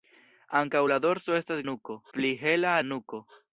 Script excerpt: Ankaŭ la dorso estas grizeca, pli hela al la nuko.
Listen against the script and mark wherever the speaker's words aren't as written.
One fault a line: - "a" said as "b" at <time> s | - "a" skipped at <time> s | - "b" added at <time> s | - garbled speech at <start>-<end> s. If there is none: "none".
- "grizeca" said as "nuko" at 1.7 s
- "al" skipped at 2.8 s